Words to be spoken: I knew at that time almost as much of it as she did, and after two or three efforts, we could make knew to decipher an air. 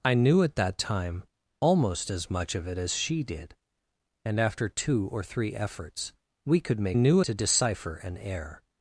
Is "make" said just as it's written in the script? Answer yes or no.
yes